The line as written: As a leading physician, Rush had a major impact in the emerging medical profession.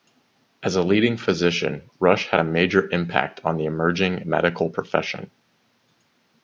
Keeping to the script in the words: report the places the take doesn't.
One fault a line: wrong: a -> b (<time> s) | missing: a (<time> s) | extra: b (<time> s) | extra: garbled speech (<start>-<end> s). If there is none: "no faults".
wrong: in -> on (3.4 s)